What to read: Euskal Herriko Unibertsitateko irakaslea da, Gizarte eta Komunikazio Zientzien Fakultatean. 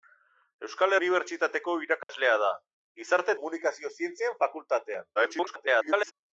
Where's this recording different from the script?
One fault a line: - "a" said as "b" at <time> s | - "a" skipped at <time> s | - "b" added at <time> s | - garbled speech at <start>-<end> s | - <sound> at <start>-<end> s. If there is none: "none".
- "Herriko" skipped at 0.9 s
- dropout at 2.0-2.1 s
- "eta" skipped at 3.3 s
- garbled speech at 5.2-6.1 s